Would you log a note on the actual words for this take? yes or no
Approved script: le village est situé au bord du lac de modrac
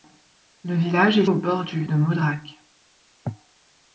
yes